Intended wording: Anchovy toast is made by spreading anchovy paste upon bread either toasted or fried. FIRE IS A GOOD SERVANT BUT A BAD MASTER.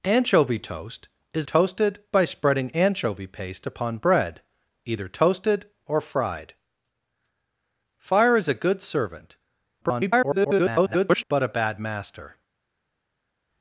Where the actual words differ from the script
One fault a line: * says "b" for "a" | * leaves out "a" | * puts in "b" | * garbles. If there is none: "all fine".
* says "toasted" for "made"
* garbles